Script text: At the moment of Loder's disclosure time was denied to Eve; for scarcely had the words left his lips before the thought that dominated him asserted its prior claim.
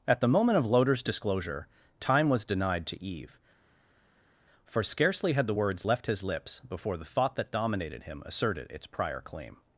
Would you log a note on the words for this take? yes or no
no